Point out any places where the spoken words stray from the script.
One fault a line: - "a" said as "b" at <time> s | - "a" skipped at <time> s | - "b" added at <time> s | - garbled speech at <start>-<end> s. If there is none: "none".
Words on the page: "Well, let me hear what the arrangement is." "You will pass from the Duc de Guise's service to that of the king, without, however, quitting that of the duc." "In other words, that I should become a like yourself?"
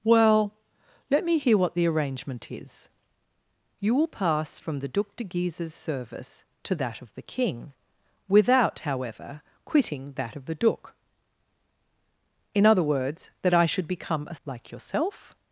none